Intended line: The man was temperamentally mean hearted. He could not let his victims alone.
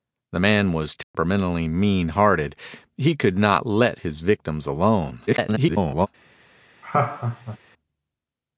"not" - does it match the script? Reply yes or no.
yes